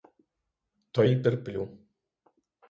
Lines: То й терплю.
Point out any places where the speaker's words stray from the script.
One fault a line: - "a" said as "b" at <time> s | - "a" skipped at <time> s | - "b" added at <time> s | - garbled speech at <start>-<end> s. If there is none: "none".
none